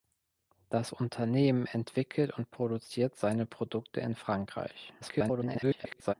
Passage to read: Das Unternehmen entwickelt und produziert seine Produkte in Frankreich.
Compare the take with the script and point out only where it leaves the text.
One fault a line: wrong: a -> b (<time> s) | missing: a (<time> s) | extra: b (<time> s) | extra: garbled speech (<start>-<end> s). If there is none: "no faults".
extra: garbled speech (5.0-6.1 s)